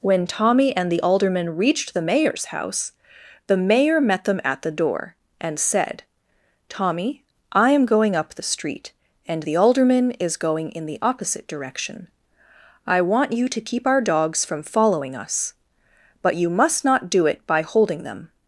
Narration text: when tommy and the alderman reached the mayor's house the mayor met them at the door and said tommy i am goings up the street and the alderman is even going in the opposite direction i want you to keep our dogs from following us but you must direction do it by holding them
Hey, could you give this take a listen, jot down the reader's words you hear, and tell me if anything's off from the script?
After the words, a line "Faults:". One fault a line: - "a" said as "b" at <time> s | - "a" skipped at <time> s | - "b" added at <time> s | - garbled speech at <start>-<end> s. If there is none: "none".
when tommy and the alderman reached the mayor's house the mayor met them at the door and said tommy i am going up the street and the alderman is going in the opposite direction i want you to keep our dogs from following us but you must not do it by holding them
Faults:
- "goings" said as "going" at 7.8 s
- "even" skipped at 10.4 s
- "direction" said as "not" at 16.8 s